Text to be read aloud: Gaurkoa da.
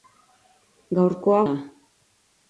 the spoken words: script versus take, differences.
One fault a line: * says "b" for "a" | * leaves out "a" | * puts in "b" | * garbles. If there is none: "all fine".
all fine